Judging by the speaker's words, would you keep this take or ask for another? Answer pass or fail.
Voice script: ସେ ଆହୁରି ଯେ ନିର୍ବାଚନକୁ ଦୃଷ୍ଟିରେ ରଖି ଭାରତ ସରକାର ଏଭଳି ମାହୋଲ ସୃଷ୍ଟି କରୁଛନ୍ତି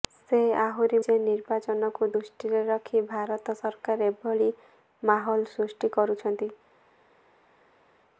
pass